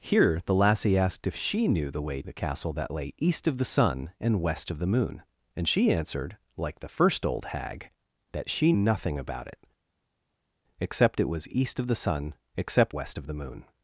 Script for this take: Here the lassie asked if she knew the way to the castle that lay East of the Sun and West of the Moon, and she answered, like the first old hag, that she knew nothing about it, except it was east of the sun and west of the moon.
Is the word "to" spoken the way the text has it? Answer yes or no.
no